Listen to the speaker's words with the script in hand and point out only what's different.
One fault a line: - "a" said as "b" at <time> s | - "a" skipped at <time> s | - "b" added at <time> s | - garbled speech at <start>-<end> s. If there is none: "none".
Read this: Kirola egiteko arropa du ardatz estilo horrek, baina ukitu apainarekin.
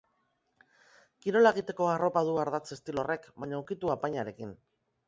none